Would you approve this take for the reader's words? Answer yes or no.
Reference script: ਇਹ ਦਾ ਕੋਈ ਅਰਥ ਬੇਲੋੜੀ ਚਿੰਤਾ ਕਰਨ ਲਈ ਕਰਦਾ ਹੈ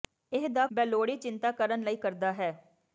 no